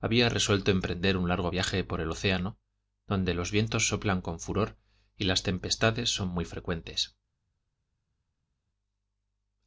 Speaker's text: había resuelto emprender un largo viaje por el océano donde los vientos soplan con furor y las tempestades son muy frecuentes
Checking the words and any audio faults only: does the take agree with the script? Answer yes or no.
yes